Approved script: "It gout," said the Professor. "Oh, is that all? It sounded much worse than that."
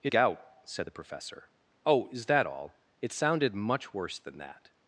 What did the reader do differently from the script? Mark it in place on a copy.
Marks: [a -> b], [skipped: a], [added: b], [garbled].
"It gout," said the Professor. "Oh, is that all? It sounded much worse than that."